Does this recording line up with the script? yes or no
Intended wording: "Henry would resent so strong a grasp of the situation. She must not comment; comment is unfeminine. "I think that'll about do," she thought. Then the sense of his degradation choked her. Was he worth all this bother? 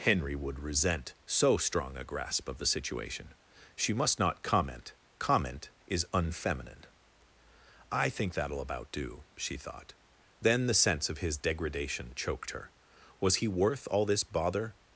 yes